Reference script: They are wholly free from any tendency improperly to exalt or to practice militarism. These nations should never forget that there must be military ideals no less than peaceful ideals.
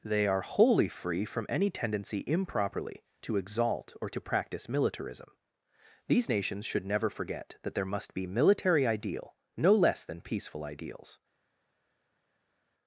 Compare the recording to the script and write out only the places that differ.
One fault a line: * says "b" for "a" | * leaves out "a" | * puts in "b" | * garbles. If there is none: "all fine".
* says "ideal" for "ideals"